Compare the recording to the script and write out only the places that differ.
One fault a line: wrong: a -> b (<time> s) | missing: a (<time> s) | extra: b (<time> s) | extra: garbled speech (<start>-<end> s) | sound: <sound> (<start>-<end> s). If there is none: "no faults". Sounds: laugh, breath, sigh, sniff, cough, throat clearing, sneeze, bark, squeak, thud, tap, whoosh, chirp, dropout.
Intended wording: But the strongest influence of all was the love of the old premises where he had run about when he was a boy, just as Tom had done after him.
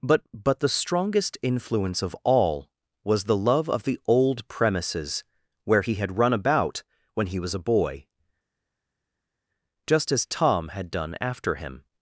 extra: but (0.3 s)